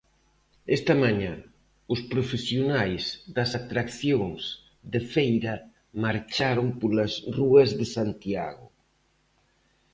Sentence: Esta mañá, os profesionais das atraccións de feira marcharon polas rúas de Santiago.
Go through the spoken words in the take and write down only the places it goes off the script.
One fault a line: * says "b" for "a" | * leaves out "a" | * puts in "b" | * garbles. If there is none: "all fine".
all fine